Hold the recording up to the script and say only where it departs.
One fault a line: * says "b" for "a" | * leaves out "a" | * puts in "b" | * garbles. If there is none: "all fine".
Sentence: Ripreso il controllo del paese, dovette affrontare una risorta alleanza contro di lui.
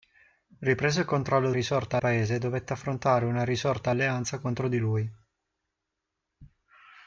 * says "risorta" for "del"